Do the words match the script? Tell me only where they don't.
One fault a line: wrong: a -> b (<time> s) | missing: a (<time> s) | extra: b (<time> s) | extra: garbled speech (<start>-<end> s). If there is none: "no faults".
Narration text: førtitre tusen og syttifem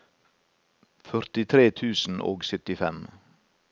no faults